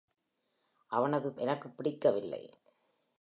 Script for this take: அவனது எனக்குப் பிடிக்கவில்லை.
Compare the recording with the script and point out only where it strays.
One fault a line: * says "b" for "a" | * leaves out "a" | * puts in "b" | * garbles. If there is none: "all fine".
all fine